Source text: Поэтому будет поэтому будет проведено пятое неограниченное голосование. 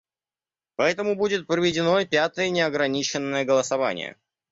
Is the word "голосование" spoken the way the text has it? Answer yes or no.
yes